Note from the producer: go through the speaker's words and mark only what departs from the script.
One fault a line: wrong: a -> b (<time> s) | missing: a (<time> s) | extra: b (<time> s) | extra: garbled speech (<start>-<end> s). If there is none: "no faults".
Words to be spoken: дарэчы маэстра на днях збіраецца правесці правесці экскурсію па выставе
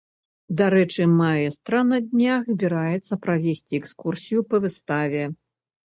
missing: правесці (3.7 s)